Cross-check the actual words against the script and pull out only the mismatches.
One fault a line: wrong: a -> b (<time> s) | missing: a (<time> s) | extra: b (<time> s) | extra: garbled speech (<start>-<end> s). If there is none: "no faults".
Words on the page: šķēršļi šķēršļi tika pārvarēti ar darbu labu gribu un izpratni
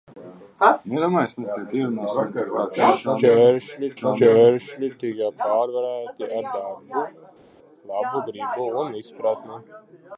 no faults